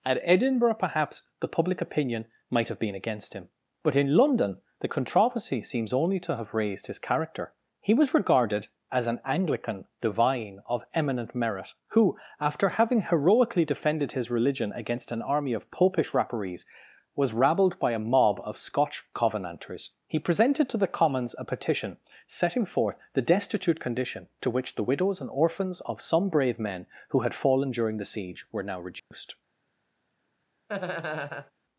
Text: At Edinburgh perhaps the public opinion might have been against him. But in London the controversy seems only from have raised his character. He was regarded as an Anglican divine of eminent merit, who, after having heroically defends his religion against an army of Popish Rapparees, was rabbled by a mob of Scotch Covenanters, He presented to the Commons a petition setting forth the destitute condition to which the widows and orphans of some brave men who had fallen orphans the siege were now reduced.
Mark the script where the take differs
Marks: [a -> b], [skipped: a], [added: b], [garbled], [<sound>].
At Edinburgh perhaps the public opinion might have been against him. But in London the controversy seems only [from -> to] have raised his character. He was regarded as an Anglican divine of eminent merit, who, after having heroically [defends -> defended] his religion against an army of Popish Rapparees, was rabbled by a mob of Scotch Covenanters, He presented to the Commons a petition setting forth the destitute condition to which the widows and orphans of some brave men who had fallen [orphans -> during] the siege were now reduced. [dropout] [laugh]